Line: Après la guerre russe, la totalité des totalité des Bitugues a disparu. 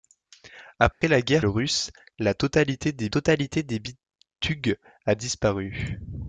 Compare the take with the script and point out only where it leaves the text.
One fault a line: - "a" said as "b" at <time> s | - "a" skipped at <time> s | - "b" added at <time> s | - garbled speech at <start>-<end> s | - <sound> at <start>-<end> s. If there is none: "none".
- dropout at 0.9-1.0 s